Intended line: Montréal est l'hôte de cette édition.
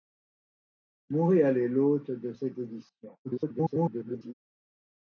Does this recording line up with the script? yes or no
no